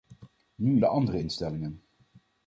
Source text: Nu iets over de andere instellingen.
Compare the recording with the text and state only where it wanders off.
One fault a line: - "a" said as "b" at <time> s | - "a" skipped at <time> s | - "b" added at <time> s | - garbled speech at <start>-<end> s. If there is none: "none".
- "iets over" skipped at 0.8 s